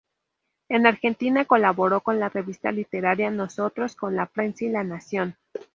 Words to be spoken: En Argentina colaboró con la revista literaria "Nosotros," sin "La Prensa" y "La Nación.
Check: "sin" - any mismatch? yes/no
yes